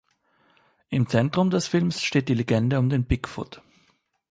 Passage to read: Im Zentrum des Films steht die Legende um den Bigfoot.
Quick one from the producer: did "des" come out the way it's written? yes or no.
yes